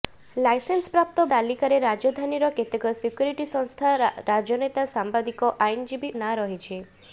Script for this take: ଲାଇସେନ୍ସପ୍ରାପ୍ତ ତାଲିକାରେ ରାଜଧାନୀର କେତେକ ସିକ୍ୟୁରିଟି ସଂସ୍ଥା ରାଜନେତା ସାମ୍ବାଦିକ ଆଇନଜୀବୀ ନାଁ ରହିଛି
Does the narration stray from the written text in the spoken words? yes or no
no